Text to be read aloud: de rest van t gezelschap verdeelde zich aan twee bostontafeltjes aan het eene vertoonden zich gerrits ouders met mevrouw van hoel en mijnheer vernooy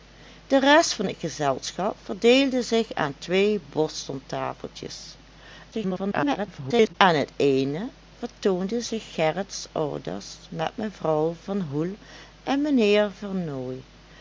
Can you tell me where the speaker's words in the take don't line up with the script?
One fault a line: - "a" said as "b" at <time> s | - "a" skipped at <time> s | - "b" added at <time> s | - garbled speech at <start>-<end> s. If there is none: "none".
- garbled speech at 5.7-6.9 s